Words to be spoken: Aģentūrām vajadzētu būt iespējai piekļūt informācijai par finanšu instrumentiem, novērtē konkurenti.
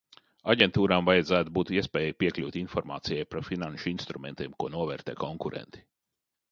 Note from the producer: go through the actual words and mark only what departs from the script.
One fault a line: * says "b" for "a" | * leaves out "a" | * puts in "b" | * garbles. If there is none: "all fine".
* puts in "ko"